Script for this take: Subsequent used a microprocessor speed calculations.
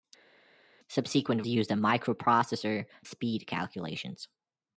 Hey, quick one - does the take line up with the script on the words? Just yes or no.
yes